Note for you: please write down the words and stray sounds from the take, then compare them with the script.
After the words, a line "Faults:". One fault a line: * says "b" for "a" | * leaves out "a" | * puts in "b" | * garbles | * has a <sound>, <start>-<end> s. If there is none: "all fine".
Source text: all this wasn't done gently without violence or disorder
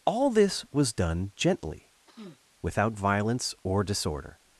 all this was done gently without violence or disorder
Faults:
* says "was" for "wasn't"
* has a sniff, 2.1-2.4 s